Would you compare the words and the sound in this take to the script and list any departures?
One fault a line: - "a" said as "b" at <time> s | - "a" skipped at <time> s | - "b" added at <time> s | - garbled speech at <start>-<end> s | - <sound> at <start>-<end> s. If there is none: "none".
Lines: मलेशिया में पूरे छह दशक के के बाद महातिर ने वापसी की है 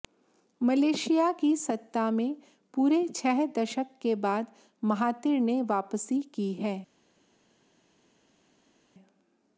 - "की सत्ता" added at 1.4 s
- "के" skipped at 4.1 s